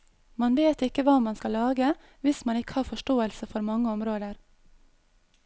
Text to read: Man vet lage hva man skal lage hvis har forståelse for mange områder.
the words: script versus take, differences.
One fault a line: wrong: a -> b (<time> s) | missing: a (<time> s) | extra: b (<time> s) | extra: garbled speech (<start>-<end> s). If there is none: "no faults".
wrong: lage -> ikke (0.9 s)
extra: man ikke (2.4 s)